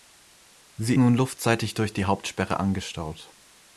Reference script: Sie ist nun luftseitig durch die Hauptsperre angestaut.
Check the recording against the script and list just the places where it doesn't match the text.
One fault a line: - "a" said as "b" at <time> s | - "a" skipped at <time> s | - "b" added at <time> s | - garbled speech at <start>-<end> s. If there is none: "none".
- "ist" skipped at 1.0 s